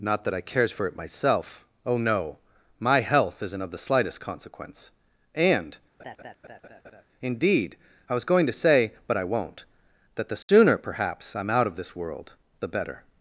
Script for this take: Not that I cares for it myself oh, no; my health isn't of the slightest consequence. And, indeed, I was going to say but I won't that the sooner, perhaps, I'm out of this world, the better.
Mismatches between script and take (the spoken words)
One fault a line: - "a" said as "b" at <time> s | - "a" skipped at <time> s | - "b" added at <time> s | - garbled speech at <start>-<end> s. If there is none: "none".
none